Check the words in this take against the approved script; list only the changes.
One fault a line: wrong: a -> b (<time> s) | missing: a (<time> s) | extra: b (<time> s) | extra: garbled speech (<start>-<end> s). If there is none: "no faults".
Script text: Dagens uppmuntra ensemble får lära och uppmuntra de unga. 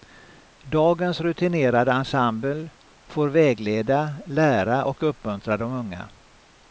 wrong: uppmuntra -> rutinerade (1.2 s)
extra: vägleda (3.3 s)